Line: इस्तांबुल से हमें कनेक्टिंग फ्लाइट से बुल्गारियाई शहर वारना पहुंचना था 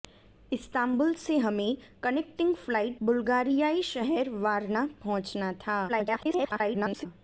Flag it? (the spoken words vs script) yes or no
yes